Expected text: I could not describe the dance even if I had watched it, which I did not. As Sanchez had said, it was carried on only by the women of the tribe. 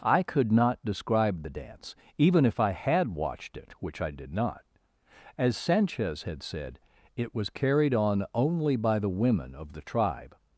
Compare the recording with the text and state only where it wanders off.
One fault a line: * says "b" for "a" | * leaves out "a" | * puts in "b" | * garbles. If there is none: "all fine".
all fine